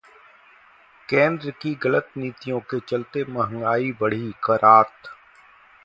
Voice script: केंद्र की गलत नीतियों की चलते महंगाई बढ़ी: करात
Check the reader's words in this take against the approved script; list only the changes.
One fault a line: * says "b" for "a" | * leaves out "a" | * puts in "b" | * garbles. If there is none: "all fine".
* says "के" for "की"